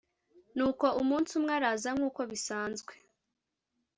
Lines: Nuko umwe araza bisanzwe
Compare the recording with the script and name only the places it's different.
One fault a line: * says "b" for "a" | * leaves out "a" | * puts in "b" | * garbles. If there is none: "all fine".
* puts in "umunsi"
* puts in "nk'uko"